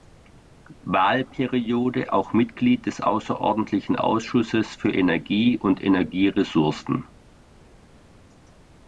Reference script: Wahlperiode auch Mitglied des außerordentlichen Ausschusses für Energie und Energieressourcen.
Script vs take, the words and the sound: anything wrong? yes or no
no